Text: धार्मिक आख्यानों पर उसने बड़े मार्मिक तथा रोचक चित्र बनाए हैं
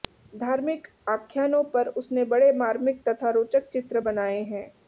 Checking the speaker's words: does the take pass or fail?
pass